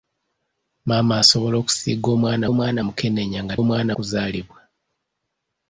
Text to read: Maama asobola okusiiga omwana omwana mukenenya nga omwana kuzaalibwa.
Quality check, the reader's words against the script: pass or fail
pass